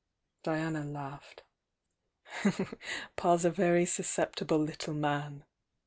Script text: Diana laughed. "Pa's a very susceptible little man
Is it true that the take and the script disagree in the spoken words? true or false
false